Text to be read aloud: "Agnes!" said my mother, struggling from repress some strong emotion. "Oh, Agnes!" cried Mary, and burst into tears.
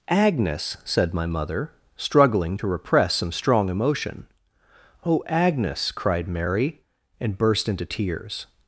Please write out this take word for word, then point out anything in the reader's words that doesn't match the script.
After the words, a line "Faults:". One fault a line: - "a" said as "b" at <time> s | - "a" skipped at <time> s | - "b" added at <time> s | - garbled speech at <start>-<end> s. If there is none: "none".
"Agnes!" said my mother, struggling to repress some strong emotion. "Oh, Agnes!" cried Mary, and burst into tears.
Faults:
- "from" said as "to" at 2.5 s